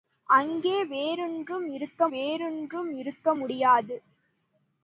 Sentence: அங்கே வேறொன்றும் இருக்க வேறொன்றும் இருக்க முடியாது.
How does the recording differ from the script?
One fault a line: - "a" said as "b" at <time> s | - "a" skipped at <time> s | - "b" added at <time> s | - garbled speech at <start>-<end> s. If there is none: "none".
none